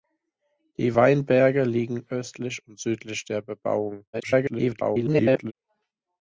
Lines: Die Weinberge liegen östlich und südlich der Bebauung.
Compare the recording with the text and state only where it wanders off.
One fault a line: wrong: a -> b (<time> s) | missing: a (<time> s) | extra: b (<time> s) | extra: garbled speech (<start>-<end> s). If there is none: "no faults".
extra: garbled speech (4.1-5.5 s)